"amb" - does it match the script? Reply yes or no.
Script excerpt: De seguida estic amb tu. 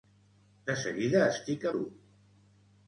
no